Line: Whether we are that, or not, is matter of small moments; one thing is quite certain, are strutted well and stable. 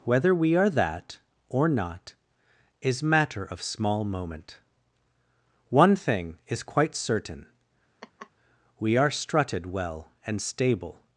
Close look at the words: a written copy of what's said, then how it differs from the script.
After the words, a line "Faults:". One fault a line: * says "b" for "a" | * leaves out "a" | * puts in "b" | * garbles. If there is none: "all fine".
Whether we are that, or not, is matter of small moment; one thing is quite certain, we are strutted well and stable.
Faults:
* says "moment" for "moments"
* puts in "we"